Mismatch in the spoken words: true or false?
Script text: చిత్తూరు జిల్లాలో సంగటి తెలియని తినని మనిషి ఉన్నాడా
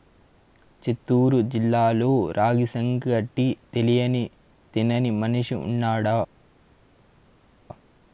true